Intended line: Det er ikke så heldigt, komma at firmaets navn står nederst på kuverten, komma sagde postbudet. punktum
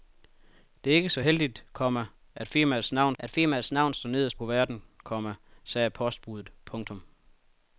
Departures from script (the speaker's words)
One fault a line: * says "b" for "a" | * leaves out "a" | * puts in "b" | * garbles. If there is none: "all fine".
* puts in "at firmaets navn"
* leaves out "på"